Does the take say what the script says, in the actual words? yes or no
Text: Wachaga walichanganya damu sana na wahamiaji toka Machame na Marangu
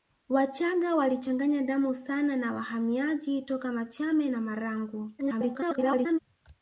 no